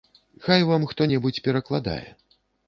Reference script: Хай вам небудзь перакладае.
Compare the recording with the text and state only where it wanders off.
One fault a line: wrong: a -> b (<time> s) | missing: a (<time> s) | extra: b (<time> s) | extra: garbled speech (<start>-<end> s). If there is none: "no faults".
extra: хто (0.9 s)